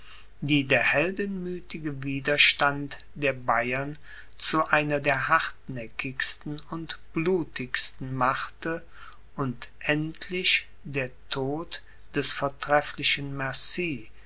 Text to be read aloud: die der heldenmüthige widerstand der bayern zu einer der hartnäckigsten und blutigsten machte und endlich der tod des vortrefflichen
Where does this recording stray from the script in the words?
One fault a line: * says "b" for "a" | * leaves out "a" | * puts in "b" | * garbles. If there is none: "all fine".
all fine